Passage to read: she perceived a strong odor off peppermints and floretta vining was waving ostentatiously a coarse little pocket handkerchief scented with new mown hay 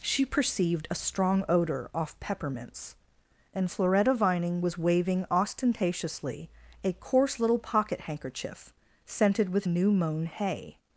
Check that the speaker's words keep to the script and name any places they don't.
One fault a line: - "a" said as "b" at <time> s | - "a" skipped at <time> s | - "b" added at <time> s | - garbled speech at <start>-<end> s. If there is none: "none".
none